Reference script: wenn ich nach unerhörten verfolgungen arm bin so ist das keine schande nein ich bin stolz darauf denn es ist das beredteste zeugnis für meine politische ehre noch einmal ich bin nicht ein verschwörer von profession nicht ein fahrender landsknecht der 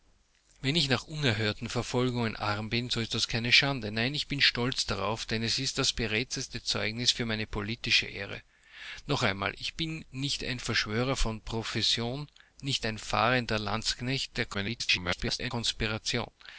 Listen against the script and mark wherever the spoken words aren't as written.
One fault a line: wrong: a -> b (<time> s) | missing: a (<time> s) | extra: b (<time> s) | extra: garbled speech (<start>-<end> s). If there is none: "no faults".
extra: garbled speech (14.5-15.5 s)